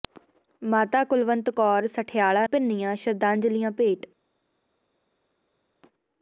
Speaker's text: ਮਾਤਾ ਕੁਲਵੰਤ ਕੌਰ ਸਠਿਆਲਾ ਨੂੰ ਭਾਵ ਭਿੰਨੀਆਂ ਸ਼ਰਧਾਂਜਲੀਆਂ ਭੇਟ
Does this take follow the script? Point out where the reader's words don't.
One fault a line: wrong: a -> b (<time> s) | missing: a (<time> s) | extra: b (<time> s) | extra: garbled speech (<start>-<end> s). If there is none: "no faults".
missing: ਨੂੰ ਭਾਵ (2.5 s)